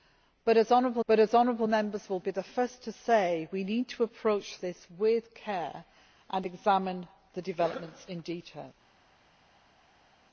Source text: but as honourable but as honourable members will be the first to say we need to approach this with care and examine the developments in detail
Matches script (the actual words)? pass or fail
pass